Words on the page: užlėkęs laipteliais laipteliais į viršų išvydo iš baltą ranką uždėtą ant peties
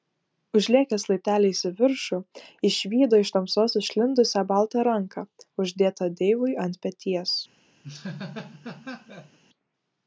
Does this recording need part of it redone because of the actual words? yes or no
yes